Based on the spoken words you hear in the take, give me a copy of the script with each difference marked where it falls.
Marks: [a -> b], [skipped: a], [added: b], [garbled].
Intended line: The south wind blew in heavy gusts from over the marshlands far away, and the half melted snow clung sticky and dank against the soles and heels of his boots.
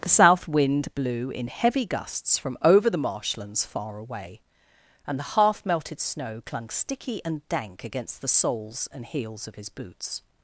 The south wind blew in heavy gusts from over the marshlands far away, and the half melted snow clung sticky and dank against the soles and heels of his boots.